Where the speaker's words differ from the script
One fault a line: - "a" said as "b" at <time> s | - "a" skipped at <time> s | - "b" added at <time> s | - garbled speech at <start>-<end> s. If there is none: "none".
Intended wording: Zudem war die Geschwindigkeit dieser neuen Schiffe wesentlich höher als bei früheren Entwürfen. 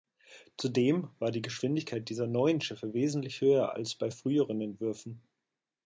none